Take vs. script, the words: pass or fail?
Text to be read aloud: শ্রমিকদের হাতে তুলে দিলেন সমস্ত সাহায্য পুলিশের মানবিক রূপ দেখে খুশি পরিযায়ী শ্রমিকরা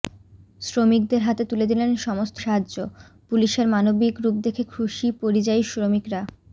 pass